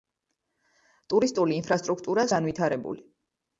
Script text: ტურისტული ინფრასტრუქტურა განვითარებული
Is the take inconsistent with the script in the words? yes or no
no